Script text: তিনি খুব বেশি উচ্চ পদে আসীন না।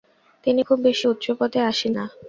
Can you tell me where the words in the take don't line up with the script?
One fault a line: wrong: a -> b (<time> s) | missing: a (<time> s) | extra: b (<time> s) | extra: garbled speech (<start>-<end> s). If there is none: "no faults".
no faults